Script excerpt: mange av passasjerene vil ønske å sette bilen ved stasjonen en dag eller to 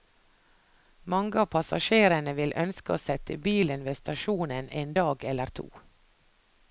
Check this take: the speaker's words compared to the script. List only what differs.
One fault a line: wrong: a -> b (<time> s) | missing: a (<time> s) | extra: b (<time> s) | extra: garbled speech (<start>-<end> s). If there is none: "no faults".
no faults